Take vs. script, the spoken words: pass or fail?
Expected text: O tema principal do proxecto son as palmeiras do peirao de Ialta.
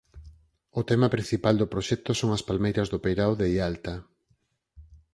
pass